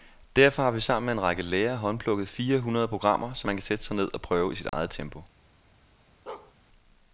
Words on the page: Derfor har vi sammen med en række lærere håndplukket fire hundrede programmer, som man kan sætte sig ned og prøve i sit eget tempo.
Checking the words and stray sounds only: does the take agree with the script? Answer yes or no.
no